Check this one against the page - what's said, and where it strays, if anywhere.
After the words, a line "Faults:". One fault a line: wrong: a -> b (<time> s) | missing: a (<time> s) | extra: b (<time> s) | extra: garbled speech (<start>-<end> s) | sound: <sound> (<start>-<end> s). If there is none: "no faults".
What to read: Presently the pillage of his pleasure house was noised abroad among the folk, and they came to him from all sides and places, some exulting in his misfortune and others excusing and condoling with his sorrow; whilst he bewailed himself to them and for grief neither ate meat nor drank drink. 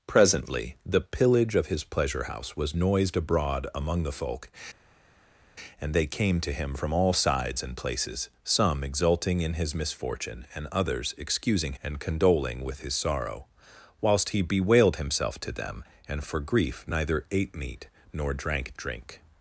Presently the pillage of his pleasure house was noised abroad among the folk, and they came to him from all sides and places, some exulting in his misfortune and others excusing and condoling with his sorrow; whilst he bewailed himself to them and for grief neither ate meat nor drank drink.
Faults:
no faults